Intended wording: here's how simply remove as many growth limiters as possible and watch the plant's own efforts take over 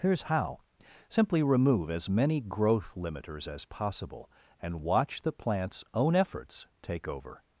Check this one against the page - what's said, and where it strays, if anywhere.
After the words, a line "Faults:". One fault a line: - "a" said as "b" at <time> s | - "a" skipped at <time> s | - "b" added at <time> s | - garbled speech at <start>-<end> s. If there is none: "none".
here's how simply remove as many growth limiters as possible and watch the plant's own efforts take over
Faults:
none